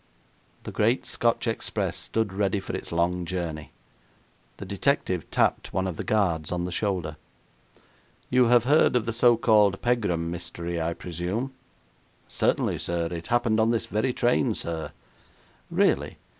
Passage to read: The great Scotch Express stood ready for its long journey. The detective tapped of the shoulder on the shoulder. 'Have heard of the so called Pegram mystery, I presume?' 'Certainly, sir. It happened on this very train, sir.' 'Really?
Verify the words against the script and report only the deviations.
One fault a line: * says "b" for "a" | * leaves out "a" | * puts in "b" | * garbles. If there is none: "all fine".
* puts in "one"
* says "guards" for "shoulder"
* puts in "You"